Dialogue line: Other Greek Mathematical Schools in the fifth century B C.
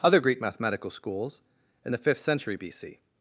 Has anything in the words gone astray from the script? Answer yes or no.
no